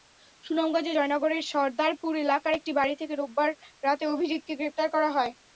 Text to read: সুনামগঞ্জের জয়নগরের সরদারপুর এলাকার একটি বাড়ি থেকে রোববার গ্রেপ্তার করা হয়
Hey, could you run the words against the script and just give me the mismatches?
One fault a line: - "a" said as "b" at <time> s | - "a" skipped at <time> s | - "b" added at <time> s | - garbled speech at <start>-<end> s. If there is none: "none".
- "রাতে অভিজিৎকে" added at 3.8 s